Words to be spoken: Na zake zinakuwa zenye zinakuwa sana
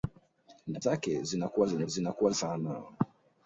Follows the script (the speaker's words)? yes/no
yes